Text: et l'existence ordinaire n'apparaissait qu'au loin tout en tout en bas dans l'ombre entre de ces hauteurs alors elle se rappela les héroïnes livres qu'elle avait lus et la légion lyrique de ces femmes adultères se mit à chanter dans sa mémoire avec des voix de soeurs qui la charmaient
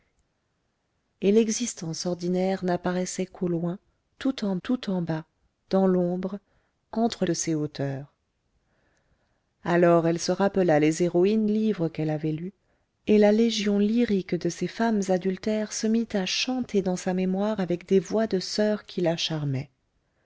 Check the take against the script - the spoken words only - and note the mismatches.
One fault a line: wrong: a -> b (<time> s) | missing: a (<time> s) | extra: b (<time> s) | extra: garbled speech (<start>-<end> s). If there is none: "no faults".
no faults